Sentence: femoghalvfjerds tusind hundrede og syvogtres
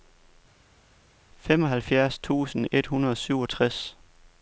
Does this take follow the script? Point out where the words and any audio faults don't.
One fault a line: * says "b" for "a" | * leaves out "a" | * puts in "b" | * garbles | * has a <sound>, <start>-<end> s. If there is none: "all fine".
* puts in "et"